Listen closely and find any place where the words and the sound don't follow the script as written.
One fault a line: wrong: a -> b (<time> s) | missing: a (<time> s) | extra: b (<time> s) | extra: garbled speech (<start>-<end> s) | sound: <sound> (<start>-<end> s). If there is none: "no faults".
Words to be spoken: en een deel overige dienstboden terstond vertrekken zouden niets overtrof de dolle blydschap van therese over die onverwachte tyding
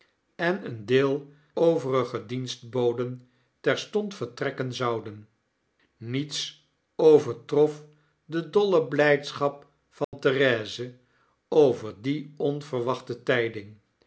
sound: dropout (10.0-10.1 s)